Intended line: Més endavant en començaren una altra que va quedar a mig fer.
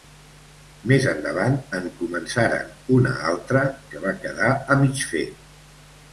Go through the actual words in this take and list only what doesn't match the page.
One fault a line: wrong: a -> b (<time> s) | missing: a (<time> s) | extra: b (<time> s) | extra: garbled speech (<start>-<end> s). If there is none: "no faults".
no faults